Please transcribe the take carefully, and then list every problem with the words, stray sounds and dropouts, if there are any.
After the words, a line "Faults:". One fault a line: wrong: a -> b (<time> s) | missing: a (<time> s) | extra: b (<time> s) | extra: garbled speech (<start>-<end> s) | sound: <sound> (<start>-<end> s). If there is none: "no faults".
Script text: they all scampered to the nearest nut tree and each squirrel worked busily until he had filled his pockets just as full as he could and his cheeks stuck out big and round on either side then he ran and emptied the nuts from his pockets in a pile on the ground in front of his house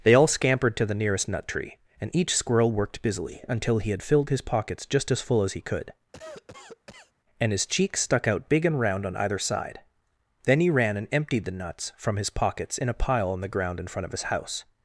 they all scampered to the nearest nut tree and each squirrel worked busily until he had filled his pockets just as full as he could and his cheeks stuck out big and round on either side then he ran and emptied the nuts from his pockets in a pile on the ground in front of his house
Faults:
sound: cough (6.1-7.1 s)